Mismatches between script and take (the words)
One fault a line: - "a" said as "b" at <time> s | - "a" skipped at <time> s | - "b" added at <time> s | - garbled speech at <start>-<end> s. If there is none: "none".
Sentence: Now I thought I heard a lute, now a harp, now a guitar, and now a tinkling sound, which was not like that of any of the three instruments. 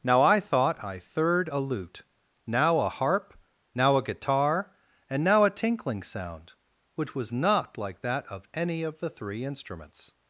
- "heard" said as "third" at 1.0 s